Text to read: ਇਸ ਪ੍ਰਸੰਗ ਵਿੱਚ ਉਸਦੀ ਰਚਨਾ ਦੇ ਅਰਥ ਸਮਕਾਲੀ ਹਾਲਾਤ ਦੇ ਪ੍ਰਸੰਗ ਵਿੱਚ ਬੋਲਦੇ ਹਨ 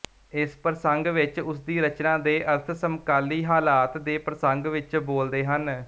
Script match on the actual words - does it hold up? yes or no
yes